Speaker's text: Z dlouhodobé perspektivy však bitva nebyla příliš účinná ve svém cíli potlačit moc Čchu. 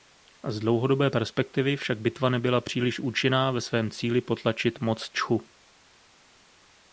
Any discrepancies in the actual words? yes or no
no